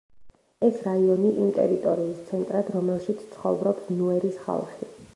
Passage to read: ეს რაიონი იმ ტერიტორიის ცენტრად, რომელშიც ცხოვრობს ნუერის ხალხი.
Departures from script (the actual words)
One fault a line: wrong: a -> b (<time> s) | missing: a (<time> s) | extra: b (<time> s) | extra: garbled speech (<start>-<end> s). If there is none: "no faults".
no faults